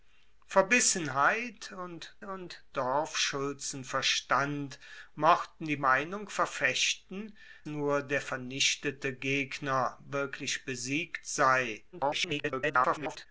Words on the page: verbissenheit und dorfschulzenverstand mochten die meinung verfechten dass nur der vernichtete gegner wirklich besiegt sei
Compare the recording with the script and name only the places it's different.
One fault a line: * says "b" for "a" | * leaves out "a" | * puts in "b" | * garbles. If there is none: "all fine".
* puts in "und"
* leaves out "dass"
* garbles